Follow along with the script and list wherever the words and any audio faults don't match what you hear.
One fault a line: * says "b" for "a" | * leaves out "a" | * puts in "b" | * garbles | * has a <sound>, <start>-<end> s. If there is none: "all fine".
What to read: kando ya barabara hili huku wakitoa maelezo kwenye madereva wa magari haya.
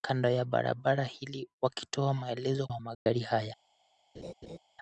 * leaves out "huku"
* leaves out "kwenye madereva"
* has a dropout, 2.9-3.1 s
* has a laugh, 4.1-4.6 s